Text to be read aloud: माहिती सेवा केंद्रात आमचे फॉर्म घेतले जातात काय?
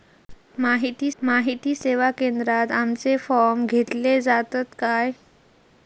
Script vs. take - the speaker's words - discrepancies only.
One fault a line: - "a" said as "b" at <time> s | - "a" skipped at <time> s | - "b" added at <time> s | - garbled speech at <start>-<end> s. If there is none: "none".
- "माहिती" added at 1.2 s